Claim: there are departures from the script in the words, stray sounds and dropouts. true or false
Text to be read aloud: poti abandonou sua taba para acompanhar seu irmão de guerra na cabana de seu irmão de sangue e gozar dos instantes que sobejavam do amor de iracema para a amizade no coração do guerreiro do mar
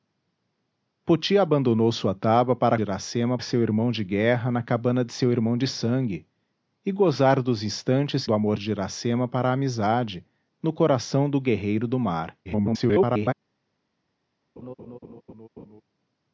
true